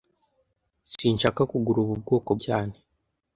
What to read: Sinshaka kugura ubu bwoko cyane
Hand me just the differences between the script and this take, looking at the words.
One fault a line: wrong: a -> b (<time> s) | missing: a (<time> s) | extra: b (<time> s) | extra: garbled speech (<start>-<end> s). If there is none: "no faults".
no faults